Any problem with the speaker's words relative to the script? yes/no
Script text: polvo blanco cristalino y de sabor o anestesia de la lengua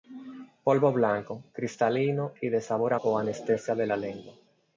no